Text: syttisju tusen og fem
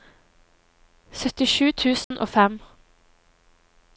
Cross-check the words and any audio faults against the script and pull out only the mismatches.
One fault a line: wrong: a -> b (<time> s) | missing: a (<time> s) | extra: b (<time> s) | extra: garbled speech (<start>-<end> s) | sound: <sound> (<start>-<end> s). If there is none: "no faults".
sound: dropout (2.0-2.1 s)